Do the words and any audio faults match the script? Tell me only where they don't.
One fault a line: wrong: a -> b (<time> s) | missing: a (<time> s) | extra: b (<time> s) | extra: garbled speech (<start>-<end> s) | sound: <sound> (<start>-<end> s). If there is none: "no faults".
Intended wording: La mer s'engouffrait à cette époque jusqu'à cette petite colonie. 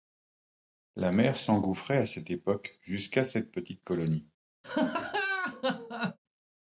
sound: laugh (4.6-6.2 s)